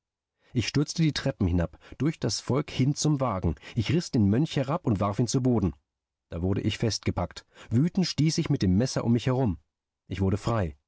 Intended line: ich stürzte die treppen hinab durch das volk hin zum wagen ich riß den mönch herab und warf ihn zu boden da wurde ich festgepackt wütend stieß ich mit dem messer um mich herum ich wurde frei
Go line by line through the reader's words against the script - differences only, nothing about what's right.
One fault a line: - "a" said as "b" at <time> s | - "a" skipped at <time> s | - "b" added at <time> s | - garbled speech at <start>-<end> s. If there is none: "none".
none